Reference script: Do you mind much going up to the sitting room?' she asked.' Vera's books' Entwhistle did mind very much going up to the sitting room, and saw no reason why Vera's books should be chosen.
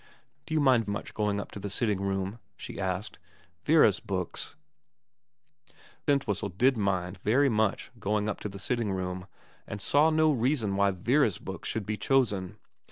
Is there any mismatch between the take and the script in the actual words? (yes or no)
no